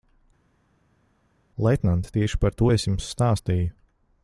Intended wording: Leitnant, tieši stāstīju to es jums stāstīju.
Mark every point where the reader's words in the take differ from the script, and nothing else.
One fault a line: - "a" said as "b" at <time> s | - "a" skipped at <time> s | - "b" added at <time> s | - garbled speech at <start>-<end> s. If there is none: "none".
- "stāstīju" said as "par" at 2.4 s